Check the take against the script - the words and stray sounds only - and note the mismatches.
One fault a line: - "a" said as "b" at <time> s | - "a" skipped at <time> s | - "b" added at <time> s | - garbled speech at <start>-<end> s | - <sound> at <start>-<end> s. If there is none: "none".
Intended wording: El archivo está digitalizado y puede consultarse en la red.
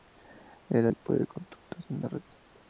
- "archivo está digitalizado" skipped at 0.9 s